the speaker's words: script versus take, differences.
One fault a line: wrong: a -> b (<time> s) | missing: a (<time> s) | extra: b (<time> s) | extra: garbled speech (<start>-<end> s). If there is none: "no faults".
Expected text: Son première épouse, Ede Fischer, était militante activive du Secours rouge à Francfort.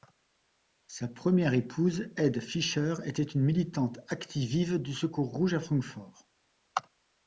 wrong: Son -> Sa (0.9 s)
extra: une (3.2 s)